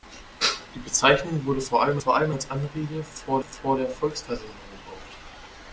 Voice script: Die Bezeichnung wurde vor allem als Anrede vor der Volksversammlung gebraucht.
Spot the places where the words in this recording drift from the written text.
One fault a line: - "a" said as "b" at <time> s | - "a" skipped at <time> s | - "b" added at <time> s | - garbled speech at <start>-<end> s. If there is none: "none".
- "vor allem" added at 2.0 s
- "vor" added at 3.4 s